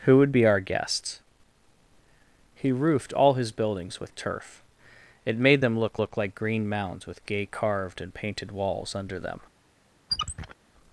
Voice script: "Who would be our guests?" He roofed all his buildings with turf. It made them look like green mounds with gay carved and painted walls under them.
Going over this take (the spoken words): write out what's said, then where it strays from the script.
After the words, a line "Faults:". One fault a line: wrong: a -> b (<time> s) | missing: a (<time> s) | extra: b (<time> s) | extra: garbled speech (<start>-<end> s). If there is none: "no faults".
"Who would be our guests?" He roofed all his buildings with turf. It made them look look like green mounds with gay carved and painted walls under them.
Faults:
extra: look (6.0 s)